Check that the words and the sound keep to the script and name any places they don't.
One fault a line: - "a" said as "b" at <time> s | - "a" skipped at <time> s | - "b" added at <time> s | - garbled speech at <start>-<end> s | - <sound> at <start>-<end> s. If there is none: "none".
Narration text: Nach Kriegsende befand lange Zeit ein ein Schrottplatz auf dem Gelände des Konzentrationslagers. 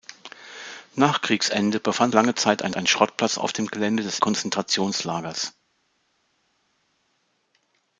none